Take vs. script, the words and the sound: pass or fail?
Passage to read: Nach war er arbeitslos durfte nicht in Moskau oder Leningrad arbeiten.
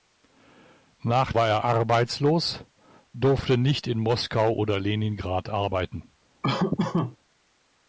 fail